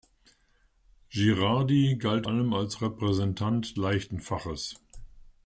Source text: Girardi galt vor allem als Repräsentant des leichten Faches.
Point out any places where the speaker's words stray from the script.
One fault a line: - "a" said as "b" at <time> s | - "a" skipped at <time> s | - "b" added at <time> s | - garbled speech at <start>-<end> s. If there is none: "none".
- "vor" skipped at 2.2 s
- "des" skipped at 3.8 s